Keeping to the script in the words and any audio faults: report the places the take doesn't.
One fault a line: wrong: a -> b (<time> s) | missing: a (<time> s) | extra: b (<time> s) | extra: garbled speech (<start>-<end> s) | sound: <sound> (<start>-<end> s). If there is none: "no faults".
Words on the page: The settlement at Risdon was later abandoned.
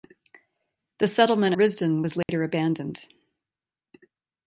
missing: at (1.5 s)
sound: dropout (2.2-2.3 s)